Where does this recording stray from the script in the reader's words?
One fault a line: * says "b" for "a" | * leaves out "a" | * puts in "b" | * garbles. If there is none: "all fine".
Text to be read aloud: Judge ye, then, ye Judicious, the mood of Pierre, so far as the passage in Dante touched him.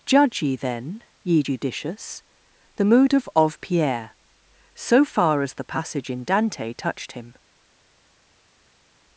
* puts in "of"